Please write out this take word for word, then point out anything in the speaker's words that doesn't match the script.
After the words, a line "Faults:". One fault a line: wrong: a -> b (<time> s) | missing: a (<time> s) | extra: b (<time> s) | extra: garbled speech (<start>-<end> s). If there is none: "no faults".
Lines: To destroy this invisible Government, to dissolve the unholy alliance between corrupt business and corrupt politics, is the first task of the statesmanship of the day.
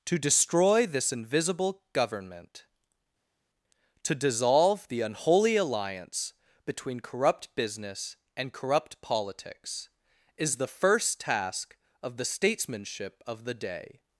To destroy this invisible Government, to dissolve the unholy alliance between corrupt business and corrupt politics, is the first task of the statesmanship of the day.
Faults:
no faults